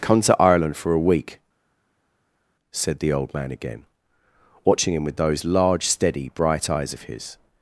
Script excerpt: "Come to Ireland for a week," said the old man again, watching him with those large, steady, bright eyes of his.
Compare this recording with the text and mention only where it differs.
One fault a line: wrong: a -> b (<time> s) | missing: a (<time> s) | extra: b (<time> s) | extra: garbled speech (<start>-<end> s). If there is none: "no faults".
no faults